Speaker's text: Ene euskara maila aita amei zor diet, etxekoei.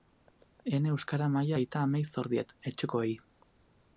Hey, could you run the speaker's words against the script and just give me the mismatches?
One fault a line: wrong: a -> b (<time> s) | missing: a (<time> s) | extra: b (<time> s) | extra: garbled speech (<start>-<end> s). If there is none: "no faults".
no faults